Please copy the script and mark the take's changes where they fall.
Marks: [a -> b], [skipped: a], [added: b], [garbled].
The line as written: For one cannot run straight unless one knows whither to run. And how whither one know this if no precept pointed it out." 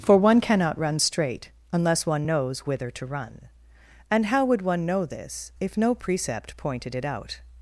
For one cannot run straight unless one knows whither to run. And how [whither -> would] one know this if no precept pointed it out."